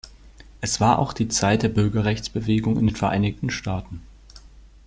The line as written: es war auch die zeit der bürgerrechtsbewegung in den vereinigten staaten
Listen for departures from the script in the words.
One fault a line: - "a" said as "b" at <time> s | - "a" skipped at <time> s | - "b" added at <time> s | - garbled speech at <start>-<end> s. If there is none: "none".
none